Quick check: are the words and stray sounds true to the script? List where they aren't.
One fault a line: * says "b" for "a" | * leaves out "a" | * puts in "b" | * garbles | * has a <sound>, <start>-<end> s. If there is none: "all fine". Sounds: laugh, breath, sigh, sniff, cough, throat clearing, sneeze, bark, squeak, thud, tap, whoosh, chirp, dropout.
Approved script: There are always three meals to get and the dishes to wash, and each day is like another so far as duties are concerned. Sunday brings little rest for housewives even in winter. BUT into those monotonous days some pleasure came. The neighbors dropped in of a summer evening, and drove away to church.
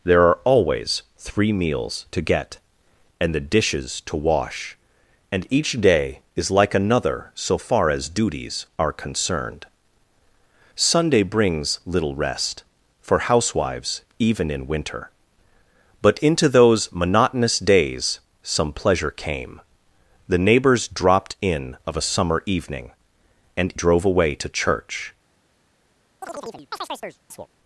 * has a chirp, 26.2-27.5 s